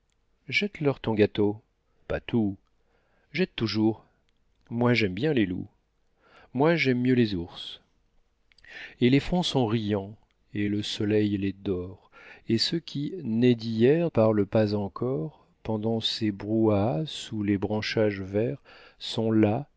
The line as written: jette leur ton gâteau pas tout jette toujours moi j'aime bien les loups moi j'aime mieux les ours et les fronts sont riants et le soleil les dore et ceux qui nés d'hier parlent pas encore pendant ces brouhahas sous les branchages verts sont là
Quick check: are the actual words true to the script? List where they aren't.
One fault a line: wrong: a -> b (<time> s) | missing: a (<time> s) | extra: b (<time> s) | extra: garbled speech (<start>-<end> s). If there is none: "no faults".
no faults